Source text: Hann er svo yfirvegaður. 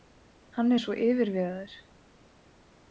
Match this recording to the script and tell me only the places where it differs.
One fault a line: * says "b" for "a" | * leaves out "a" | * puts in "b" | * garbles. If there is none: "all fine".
all fine